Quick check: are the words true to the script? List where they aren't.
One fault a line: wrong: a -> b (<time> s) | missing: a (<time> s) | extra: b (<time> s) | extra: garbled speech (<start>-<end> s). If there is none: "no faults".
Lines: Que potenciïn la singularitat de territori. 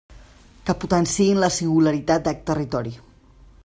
no faults